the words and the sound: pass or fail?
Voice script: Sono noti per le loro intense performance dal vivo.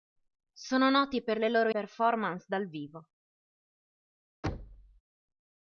fail